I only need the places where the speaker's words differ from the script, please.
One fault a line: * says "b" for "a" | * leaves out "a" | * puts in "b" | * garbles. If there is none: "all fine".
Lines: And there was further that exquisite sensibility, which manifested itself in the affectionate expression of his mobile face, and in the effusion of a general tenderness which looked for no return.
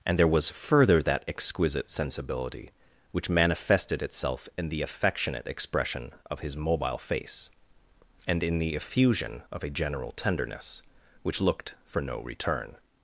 all fine